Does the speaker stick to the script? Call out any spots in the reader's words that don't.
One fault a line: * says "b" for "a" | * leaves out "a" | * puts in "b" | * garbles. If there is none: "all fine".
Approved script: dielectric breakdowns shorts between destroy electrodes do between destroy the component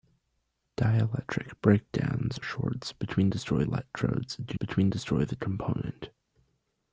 all fine